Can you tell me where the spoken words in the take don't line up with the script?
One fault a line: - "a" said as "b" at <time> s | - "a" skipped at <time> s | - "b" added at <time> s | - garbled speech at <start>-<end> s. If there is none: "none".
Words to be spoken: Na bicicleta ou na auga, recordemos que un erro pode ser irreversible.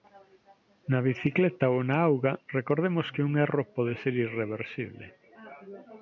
none